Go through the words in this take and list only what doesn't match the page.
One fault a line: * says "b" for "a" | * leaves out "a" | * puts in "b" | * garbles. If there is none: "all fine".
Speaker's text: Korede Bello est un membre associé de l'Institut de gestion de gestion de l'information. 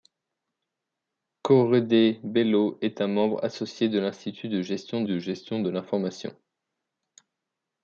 all fine